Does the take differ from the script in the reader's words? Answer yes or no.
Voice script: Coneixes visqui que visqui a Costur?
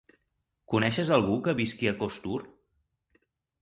yes